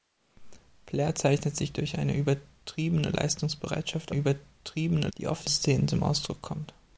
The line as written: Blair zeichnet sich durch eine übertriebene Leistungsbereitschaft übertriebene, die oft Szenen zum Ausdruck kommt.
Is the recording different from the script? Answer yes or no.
no